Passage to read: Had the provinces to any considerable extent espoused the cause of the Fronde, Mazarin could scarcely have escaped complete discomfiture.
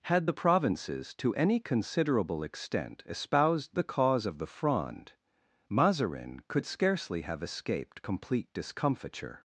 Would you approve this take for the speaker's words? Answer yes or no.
yes